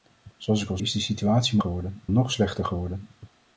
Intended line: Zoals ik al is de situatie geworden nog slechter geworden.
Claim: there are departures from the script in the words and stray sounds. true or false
false